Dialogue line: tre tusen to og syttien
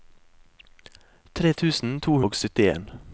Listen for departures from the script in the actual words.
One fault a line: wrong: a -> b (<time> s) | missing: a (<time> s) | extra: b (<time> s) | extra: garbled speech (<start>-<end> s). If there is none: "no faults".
no faults